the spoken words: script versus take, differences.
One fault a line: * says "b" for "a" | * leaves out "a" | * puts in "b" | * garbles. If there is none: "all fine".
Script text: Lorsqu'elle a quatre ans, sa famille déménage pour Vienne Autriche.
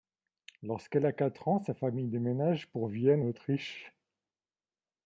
all fine